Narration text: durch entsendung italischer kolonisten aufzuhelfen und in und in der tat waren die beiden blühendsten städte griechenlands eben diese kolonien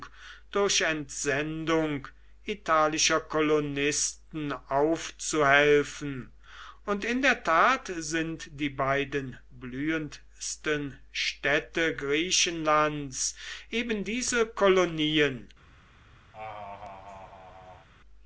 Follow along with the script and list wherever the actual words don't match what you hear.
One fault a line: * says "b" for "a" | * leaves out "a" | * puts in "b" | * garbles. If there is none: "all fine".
* leaves out "und in"
* says "sind" for "waren"